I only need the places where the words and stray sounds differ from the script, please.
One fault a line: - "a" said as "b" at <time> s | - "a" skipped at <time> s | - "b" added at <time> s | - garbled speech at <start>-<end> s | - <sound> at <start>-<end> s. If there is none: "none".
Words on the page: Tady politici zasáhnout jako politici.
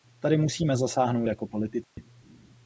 - "politici" said as "musíme" at 0.4 s
- dropout at 1.8-2.0 s